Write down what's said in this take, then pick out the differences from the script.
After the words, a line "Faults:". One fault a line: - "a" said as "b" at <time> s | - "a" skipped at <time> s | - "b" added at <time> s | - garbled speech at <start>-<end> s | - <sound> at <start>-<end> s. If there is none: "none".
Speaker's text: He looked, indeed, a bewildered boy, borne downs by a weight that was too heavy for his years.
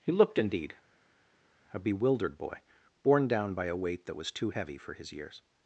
He looked, indeed, a bewildered boy, borne down by a weight that was too heavy for his years.
Faults:
- "downs" said as "down" at 3.3 s